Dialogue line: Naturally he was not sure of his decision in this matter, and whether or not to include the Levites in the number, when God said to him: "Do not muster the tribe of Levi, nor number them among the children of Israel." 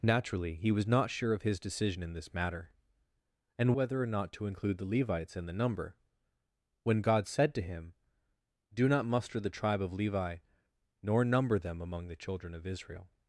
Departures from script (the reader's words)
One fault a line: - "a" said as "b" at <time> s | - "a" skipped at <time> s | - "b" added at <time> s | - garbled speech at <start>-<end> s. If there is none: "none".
none